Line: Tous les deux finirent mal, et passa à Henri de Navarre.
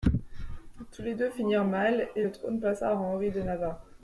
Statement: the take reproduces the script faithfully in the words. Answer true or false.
false